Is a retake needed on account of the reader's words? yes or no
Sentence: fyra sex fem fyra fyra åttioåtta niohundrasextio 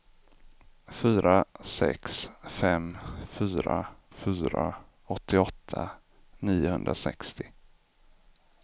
no